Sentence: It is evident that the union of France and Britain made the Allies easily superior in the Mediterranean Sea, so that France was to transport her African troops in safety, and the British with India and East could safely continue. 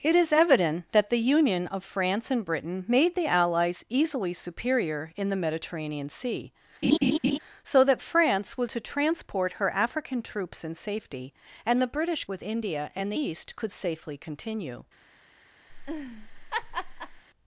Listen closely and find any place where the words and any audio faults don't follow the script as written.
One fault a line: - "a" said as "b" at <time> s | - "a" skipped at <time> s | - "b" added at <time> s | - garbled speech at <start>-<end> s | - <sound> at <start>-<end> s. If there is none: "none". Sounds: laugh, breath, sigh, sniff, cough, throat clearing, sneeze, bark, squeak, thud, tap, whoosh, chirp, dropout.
- laugh at 6.8-7.4 s
- laugh at 15.7-17.2 s